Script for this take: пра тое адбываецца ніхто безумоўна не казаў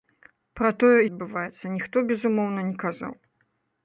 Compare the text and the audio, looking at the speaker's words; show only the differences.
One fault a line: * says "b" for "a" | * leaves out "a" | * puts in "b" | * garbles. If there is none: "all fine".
all fine